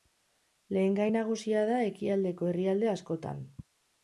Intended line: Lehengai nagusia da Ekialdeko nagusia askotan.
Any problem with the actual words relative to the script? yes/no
yes